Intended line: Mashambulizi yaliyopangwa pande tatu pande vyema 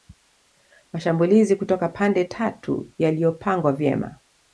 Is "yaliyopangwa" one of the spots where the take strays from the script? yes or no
yes